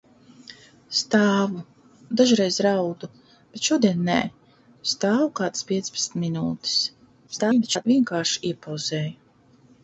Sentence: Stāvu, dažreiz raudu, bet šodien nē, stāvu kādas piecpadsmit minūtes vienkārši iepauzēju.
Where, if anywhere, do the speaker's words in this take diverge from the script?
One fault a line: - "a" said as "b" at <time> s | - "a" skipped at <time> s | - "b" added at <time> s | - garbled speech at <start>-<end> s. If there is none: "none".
- garbled speech at 7.3-7.9 s